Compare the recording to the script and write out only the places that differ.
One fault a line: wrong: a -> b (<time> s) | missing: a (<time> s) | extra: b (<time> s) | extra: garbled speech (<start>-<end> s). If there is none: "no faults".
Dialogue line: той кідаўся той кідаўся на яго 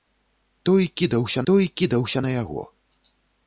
no faults